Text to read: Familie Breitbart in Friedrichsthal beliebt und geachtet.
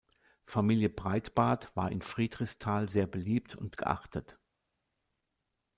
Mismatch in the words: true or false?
true